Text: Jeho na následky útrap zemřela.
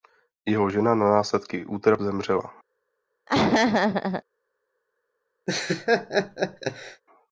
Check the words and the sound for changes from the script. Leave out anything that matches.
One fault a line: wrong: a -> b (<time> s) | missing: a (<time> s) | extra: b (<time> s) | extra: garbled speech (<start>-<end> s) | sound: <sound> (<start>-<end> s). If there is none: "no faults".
extra: žena (0.7 s)
sound: laugh (3.3-4.2 s)
sound: laugh (5.5-7.0 s)